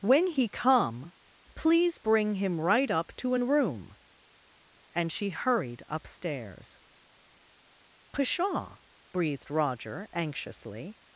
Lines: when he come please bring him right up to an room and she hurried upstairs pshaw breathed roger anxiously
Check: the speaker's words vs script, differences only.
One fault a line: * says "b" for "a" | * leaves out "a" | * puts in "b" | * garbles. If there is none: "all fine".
all fine